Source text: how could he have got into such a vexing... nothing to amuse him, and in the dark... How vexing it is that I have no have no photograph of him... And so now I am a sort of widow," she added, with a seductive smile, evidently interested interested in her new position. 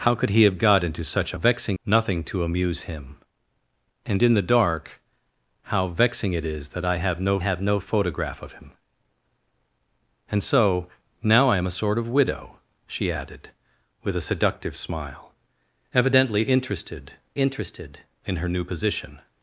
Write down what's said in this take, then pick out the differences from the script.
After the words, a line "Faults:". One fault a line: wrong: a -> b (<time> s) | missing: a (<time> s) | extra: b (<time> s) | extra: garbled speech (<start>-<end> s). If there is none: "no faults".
how could he have got into such a vexing... nothing to amuse him, and in the dark... How vexing it is that I have no have no photograph of him... And so now I am a sort of widow," she added, with a seductive smile, evidently interested interested in her new position.
Faults:
no faults